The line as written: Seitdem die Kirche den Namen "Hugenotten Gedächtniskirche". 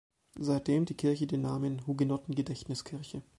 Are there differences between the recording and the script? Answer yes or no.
no